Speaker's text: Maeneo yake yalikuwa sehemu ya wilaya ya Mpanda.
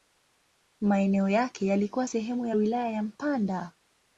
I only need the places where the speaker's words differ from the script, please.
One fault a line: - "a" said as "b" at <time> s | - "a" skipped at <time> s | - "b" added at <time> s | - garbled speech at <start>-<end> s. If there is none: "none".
none